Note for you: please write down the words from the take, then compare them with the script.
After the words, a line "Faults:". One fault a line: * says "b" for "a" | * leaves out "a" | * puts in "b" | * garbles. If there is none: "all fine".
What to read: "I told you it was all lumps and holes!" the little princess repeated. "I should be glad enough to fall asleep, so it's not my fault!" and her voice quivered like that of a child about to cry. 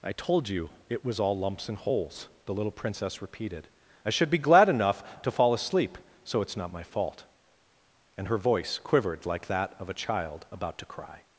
"I told you it was all lumps and holes!" the little princess repeated. "I should be glad enough to fall asleep, so it's not my fault!" and her voice quivered like that of a child about to cry.
Faults:
all fine